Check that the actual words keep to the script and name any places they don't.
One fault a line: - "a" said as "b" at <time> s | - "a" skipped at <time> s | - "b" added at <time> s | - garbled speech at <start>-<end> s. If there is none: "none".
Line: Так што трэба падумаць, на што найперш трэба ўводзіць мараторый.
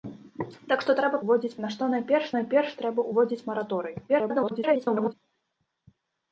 - "падумаць" said as "ўводзіць" at 1.2 s
- "найперш" added at 2.4 s
- garbled speech at 4.1-5.1 s